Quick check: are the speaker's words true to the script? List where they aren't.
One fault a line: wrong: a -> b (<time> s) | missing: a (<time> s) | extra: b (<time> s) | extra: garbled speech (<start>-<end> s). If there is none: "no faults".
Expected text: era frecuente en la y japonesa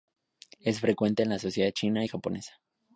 wrong: era -> es (0.6 s)
extra: sociedad china (1.4 s)